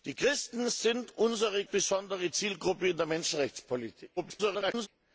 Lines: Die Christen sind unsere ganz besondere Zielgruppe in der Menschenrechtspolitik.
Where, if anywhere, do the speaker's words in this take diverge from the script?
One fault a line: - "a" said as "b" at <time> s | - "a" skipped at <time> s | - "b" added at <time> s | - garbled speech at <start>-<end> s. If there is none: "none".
- "ganz" skipped at 1.6 s
- garbled speech at 4.2-4.9 s